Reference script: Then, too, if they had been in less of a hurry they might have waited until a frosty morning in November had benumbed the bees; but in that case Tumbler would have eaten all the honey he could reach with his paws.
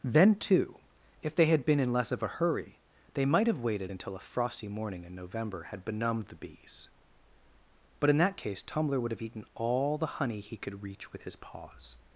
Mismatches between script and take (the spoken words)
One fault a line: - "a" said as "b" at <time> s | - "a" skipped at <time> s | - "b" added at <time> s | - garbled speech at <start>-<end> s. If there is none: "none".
none